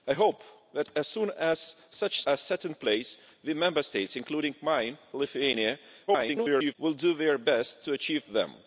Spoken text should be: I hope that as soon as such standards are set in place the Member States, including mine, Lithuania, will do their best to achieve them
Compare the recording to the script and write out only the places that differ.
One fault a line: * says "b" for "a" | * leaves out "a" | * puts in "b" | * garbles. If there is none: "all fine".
* leaves out "standards"
* garbles